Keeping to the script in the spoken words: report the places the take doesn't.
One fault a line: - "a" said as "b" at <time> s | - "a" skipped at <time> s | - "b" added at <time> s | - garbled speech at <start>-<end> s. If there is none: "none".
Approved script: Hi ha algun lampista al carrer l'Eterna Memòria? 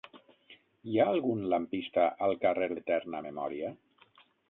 none